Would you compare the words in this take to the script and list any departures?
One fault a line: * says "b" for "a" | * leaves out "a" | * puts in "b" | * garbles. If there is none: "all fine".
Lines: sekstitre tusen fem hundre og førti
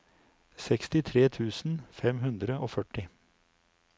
all fine